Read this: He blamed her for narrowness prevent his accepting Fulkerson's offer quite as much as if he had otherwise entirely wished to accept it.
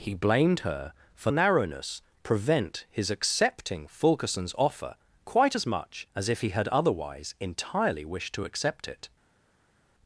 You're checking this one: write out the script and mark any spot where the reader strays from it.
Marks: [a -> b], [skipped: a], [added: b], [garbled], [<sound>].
He blamed her for narrowness prevent his accepting Fulkerson's offer quite as much as if he had otherwise entirely wished to accept it.